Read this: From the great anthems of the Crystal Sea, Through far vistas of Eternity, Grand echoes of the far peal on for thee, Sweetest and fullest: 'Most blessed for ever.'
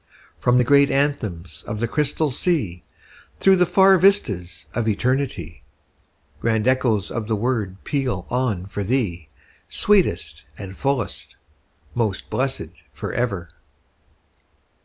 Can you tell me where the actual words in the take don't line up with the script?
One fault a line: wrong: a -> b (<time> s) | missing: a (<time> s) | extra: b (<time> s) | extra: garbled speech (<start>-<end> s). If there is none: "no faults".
extra: the (3.6 s)
wrong: far -> word (7.3 s)